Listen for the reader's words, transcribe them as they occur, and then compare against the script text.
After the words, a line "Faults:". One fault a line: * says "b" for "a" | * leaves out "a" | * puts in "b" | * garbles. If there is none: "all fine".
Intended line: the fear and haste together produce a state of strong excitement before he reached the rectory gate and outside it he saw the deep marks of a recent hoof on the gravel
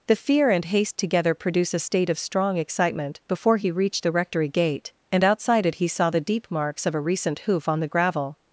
the fear and haste together produce a state of strong excitement before he reached the rectory gate and outside it he saw the deep marks of a recent hoof on the gravel
Faults:
all fine